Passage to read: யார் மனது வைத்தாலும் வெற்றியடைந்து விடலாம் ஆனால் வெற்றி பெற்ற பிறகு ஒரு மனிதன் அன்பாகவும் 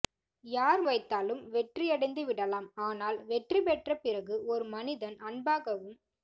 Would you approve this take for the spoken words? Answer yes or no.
no